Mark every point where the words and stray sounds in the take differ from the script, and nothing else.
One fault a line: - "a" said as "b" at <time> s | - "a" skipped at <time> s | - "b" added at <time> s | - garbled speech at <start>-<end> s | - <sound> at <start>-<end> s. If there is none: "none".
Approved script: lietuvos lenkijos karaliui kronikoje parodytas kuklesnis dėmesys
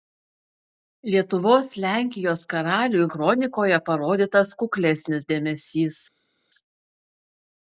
none